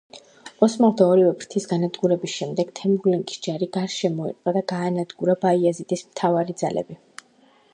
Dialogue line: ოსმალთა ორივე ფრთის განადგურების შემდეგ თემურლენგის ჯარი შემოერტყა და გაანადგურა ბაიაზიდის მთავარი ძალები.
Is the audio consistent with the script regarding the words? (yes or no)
no